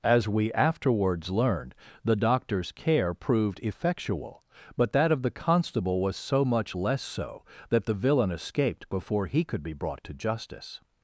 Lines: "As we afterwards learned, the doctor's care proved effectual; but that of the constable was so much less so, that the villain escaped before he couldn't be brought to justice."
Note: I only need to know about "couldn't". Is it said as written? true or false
false